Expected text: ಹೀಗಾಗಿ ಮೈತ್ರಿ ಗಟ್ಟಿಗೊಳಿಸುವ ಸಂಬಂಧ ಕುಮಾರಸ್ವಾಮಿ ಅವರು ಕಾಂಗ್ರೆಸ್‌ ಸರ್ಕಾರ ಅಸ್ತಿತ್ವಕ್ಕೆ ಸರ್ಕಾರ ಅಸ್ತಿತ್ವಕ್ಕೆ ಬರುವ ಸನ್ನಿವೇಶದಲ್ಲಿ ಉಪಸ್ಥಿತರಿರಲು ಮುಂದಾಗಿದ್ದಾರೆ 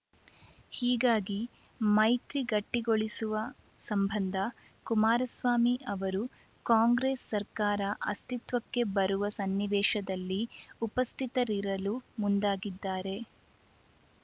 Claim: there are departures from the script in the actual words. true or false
true